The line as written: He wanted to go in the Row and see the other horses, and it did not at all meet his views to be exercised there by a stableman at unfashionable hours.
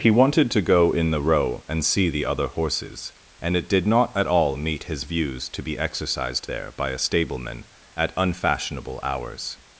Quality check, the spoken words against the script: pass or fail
pass